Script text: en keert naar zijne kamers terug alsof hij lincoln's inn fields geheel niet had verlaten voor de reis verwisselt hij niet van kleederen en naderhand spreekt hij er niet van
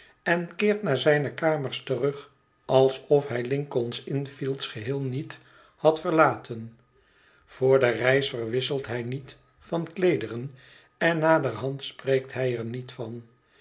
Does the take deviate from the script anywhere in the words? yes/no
no